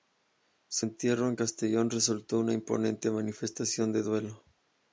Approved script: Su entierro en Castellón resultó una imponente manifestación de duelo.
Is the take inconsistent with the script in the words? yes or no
no